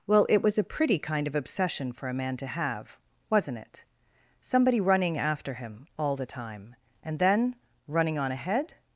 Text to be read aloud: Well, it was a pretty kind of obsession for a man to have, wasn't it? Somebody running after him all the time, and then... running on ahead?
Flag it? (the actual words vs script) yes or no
no